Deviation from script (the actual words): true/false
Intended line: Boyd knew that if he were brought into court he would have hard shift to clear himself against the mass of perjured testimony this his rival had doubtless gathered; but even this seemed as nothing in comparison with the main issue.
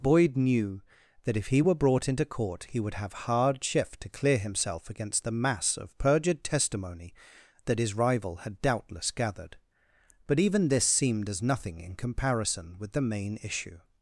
true